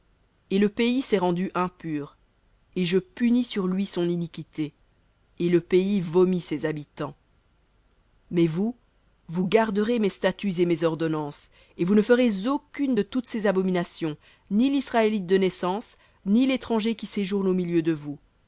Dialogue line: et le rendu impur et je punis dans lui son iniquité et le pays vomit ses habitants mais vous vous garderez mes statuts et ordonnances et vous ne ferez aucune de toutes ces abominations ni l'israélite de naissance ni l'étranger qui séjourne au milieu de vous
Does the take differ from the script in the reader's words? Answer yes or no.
yes